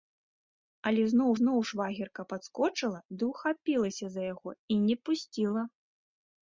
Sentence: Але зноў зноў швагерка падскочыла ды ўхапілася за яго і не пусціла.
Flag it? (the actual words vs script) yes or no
no